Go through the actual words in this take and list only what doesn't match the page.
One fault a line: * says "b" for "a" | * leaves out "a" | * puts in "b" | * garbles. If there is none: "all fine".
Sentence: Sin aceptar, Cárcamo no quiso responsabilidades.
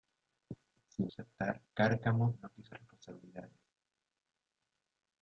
all fine